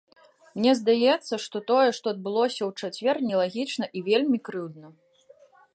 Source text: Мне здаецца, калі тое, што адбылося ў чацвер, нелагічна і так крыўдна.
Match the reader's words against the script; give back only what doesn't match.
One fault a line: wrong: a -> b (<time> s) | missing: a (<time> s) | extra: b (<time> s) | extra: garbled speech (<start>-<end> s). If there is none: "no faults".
wrong: калі -> што (1.4 s)
wrong: так -> вельмі (4.1 s)